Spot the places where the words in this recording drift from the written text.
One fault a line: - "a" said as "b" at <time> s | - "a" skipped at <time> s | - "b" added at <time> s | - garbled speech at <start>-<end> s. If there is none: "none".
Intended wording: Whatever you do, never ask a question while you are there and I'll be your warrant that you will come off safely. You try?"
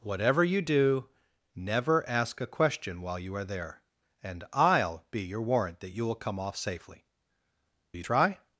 none